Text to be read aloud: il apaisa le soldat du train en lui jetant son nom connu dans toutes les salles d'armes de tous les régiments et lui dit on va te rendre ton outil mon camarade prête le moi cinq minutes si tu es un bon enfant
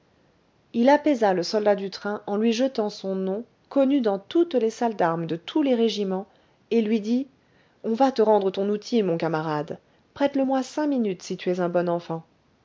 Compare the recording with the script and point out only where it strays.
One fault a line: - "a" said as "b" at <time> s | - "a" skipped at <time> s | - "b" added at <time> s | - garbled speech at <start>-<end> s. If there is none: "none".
none